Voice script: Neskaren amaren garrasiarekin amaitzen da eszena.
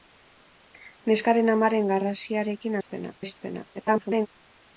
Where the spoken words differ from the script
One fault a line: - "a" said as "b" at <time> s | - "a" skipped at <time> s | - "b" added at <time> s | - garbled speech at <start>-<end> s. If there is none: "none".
- "amaitzen" said as "eszena" at 2.8 s
- garbled speech at 3.7-4.3 s